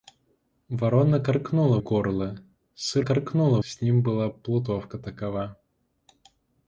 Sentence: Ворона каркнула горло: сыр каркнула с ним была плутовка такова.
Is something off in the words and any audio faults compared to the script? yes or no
no